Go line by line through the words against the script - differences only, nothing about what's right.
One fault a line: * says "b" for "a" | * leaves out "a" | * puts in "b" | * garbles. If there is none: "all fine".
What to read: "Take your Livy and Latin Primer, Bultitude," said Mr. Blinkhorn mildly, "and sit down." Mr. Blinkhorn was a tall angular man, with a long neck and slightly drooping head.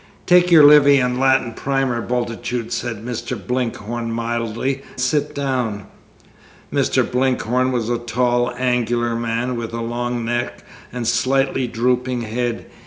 * leaves out "and"